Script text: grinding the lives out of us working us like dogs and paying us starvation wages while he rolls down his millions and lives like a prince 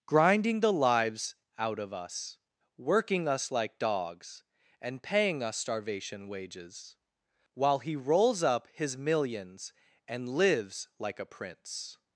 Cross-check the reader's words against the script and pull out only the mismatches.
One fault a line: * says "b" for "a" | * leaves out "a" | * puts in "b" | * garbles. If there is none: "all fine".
* says "up" for "down"